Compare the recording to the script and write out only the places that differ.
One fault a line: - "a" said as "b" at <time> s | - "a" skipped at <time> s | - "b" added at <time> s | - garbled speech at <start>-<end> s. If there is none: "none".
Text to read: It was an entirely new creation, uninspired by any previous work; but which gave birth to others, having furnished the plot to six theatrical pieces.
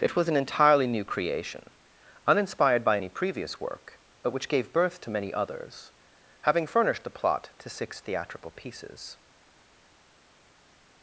- "many" added at 5.1 s